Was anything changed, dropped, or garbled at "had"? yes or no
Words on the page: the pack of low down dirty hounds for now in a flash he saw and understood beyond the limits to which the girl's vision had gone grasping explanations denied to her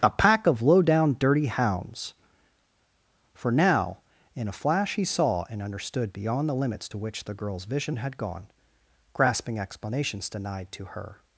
no